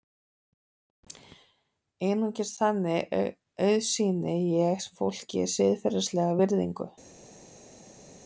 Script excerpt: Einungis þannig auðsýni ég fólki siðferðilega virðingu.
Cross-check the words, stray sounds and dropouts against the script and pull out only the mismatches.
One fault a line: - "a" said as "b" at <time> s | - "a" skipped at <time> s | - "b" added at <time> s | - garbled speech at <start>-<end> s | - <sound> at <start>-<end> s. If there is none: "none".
none